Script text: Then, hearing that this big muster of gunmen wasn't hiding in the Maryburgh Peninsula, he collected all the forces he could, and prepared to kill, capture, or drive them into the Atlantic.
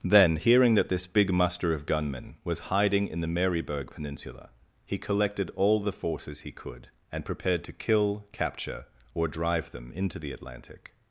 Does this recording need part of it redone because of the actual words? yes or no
yes